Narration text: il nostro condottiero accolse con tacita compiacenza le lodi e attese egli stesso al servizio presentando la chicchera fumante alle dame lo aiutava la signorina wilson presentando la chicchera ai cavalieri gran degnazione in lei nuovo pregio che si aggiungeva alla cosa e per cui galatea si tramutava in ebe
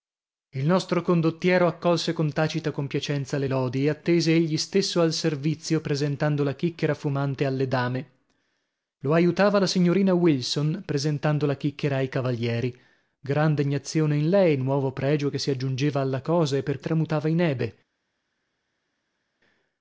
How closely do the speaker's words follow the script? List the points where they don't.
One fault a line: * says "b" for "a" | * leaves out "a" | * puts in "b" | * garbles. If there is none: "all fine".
* leaves out "cui galatea si"